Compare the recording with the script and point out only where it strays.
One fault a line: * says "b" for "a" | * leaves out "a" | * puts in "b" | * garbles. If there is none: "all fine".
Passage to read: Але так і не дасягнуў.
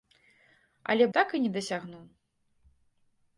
all fine